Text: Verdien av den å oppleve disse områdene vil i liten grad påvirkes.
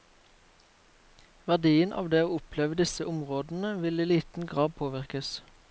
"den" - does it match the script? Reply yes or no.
no